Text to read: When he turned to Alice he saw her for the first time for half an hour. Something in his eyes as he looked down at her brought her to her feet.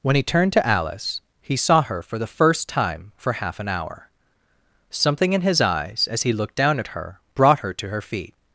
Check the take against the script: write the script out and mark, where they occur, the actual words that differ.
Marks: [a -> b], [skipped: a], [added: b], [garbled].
When he turned to Alice he saw her for the first time for half an hour. Something in his eyes as he looked down at her brought her to her feet.